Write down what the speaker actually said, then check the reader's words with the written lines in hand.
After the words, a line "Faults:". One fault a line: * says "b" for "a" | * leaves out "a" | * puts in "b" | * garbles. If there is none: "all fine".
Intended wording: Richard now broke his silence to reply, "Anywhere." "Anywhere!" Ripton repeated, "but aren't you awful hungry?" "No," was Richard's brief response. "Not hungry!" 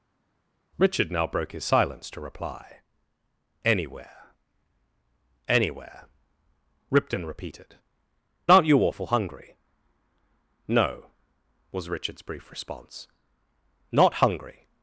Richard now broke his silence to reply, "Anywhere." "Anywhere!" Ripton repeated, "aren't you awful hungry?" "No," was Richard's brief response. "Not hungry!"
Faults:
* leaves out "but"